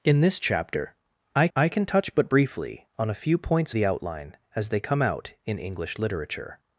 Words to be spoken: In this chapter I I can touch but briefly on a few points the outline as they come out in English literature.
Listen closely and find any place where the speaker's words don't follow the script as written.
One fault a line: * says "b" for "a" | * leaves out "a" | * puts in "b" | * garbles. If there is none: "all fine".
all fine